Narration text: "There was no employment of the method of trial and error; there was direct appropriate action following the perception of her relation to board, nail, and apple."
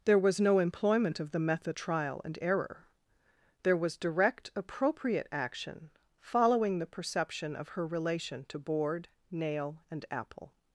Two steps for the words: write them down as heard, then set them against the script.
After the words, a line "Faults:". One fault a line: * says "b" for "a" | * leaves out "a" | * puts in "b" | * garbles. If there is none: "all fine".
"There was no employment of the method trial and error; there was direct appropriate action following the perception of her relation to board, nail, and apple."
Faults:
* leaves out "of"